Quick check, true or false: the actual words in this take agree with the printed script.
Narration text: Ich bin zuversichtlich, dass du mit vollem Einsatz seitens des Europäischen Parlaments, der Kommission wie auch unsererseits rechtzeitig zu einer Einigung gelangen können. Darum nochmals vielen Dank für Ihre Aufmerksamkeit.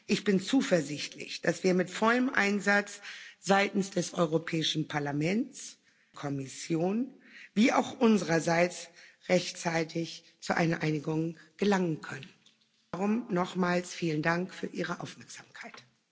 false